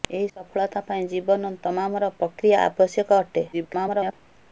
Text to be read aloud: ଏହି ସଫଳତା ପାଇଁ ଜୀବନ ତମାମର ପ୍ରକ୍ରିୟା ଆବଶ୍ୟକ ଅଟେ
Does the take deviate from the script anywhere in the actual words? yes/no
yes